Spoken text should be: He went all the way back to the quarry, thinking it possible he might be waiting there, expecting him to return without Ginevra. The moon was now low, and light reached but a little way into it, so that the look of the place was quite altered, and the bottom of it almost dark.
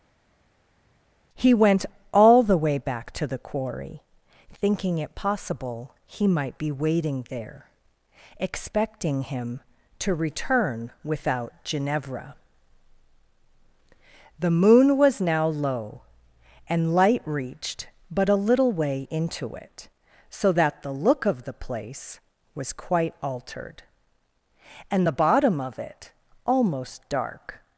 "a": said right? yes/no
yes